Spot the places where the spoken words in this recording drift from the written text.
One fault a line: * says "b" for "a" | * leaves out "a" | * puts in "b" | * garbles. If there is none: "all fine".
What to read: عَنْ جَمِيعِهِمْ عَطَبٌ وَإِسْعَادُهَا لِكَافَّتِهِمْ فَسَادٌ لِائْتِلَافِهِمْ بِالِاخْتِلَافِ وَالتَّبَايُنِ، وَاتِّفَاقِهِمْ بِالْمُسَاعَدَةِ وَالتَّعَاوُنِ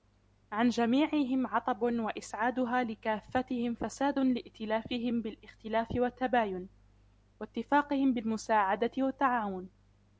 all fine